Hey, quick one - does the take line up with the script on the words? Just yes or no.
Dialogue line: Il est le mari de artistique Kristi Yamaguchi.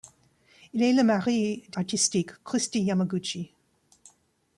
yes